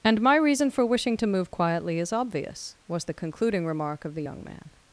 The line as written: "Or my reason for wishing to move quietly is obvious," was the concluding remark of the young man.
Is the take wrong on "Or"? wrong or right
wrong